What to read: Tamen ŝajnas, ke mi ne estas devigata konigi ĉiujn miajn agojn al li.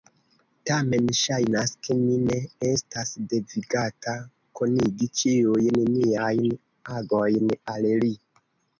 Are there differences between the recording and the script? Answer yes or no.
no